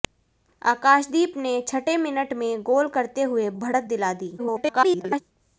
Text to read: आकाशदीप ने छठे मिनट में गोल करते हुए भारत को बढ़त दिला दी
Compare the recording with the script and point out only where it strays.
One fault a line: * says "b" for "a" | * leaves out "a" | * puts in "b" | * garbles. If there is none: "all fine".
* leaves out "भारत को"
* garbles